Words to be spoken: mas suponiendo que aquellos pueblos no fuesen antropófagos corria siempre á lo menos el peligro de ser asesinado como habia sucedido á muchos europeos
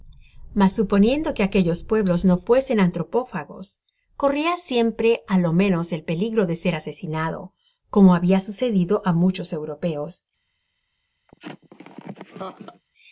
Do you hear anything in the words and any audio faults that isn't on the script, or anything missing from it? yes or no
yes